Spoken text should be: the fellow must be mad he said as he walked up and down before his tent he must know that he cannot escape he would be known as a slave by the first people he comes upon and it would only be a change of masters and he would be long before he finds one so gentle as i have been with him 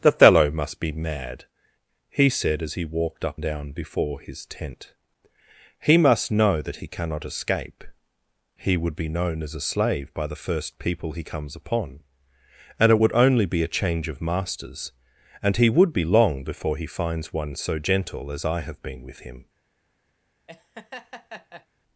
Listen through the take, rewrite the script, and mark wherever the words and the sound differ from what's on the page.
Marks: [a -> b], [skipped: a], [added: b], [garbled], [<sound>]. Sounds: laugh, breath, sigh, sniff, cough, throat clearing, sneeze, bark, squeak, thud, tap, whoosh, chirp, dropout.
the fellow must be mad he said as he walked up [skipped: and] down before his tent he must know that he cannot escape he would be known as a slave by the first people he comes upon and it would only be a change of masters and he would be long before he finds one so gentle as i have been with him [laugh]